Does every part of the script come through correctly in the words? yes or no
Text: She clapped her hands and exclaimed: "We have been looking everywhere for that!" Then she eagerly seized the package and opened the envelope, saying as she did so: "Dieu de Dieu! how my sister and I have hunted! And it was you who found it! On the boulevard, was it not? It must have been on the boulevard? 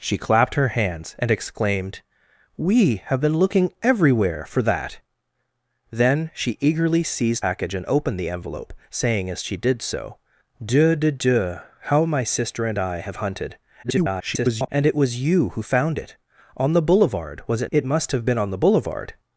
no